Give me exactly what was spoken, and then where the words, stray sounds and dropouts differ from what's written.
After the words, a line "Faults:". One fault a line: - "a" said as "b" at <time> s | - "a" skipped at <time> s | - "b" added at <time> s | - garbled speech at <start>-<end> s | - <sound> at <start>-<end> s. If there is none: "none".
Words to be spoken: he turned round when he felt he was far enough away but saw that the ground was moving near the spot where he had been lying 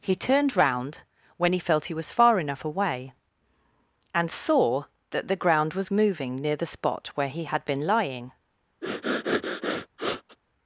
he turned round when he felt he was far enough away and saw that the ground was moving near the spot where he had been lying
Faults:
- "but" said as "and" at 4.1 s
- sniff at 8.8-10.4 s